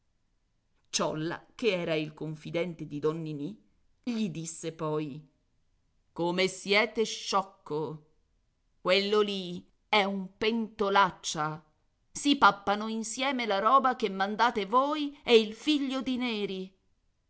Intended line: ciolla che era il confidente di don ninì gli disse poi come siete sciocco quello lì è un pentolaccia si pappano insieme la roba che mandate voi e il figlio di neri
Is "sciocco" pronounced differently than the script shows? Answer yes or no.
no